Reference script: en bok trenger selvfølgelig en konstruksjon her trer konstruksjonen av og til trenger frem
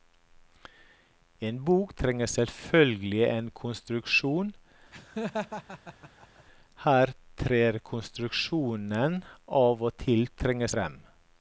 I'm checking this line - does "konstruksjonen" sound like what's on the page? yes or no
yes